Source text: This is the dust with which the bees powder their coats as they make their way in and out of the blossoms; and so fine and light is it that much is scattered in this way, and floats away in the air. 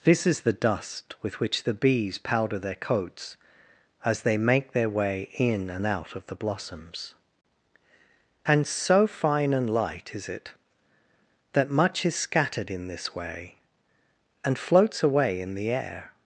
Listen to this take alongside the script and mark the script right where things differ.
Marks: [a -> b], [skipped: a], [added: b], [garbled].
This is the dust with which the bees powder their coats as they make their way in and out of the blossoms; and so fine and light is it that much is scattered in this way, and floats away in the air.